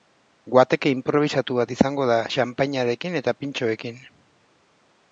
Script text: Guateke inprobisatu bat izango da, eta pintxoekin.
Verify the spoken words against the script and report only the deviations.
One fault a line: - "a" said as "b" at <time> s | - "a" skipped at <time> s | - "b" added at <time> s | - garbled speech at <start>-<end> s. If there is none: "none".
- "xanpainarekin" added at 2.4 s